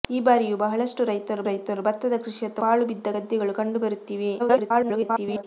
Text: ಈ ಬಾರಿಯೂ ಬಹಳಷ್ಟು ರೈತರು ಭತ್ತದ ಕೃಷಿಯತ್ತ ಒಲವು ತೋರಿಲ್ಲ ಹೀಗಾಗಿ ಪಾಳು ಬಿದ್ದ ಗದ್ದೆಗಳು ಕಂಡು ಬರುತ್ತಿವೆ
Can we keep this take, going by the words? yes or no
no